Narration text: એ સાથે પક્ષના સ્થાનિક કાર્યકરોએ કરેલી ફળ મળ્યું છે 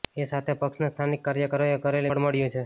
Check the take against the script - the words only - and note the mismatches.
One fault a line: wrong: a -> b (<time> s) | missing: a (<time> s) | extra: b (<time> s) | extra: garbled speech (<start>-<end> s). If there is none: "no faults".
no faults